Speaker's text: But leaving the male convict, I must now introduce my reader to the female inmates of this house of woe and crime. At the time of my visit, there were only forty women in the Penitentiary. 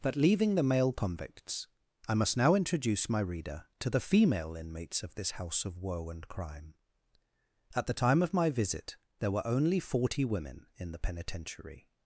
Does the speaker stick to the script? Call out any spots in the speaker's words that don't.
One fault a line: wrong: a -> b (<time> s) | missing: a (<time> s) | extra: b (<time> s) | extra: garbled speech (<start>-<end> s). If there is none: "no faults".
wrong: convict -> convicts (0.9 s)